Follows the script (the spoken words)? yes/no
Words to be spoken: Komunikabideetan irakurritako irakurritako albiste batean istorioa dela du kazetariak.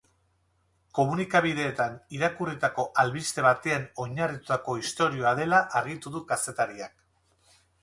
no